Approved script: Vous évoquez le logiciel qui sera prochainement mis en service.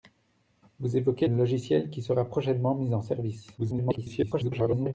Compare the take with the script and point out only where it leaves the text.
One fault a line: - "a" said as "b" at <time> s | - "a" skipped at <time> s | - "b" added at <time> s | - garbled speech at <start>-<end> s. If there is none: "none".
- "le" skipped at 1.3 s
- garbled speech at 3.6-4.9 s